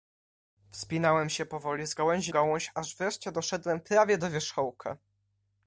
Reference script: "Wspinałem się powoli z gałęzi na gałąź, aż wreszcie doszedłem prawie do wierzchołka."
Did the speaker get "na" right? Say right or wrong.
wrong